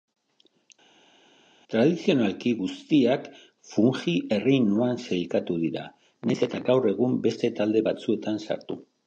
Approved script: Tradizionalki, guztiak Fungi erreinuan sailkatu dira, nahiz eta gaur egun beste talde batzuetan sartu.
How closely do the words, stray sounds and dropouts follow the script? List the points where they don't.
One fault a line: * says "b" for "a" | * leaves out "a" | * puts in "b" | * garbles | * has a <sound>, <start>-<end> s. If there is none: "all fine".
all fine